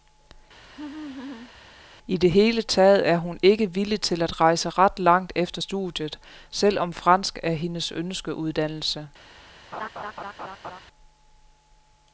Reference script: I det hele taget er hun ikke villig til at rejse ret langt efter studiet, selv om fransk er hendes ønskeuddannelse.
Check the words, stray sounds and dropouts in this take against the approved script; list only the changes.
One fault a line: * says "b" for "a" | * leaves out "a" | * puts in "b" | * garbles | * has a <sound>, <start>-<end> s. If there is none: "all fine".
* has a laugh, 0.6-1.5 s
* has a laugh, 9.7-10.8 s